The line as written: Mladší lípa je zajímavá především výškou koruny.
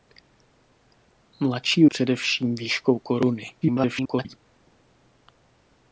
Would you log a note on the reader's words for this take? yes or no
yes